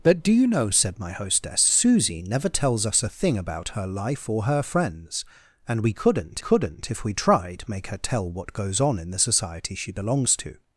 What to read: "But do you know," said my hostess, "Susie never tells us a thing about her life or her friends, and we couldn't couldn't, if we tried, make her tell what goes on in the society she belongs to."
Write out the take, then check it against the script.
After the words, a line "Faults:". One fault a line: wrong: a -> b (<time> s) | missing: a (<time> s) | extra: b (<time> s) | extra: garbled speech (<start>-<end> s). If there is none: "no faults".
"But do you know," said my hostess, "Susie never tells us a thing about her life or her friends, and we couldn't couldn't, if we tried, make her tell what goes on in the society she belongs to."
Faults:
no faults